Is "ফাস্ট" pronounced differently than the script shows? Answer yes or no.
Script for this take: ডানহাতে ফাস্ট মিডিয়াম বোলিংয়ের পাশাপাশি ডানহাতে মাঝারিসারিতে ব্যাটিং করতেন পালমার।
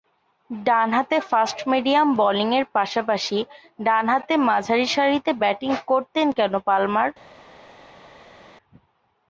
no